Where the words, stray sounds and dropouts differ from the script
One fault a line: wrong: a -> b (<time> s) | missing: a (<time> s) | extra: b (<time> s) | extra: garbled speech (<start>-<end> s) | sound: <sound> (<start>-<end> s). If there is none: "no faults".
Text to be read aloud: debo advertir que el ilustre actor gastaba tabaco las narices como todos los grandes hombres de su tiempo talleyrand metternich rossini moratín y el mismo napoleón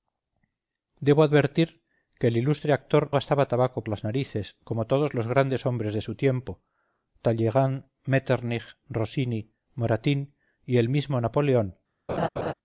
sound: laugh (12.1-12.5 s)